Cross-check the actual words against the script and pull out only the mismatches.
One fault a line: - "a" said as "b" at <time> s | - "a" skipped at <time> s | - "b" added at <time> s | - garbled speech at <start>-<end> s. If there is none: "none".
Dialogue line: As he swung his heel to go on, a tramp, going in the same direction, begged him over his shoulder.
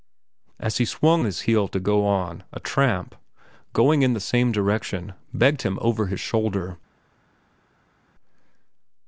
none